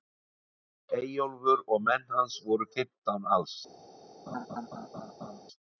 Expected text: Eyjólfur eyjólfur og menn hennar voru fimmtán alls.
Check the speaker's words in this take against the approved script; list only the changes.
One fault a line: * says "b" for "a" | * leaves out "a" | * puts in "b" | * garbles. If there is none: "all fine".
* leaves out "eyjólfur"
* says "hans" for "hennar"